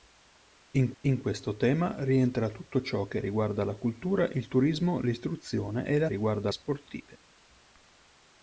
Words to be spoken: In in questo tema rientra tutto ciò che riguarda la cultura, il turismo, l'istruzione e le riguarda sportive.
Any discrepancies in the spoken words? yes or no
no